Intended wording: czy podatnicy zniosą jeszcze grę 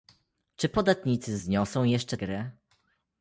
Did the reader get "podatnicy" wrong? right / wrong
right